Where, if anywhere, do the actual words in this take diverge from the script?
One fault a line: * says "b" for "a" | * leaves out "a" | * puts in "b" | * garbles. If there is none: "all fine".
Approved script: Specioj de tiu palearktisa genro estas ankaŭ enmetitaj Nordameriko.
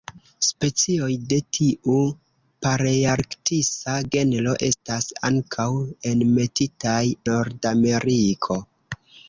all fine